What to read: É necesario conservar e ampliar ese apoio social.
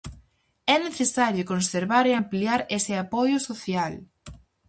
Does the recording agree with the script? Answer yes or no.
yes